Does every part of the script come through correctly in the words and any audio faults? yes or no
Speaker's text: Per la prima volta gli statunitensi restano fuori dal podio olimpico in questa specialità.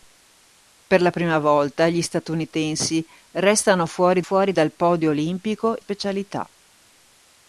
no